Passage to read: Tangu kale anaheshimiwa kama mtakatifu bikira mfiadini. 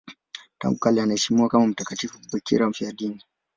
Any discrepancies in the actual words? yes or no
no